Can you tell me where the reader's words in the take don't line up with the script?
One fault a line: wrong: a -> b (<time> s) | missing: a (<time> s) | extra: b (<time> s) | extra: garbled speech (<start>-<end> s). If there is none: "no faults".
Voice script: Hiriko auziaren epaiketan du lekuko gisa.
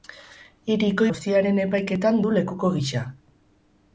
no faults